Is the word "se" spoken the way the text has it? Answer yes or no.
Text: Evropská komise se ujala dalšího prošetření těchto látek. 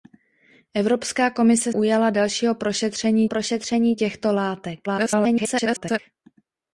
no